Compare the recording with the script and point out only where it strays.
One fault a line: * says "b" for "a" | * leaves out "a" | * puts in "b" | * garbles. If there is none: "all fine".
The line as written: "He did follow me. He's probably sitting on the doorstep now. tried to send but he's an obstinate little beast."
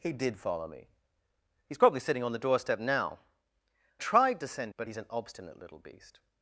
all fine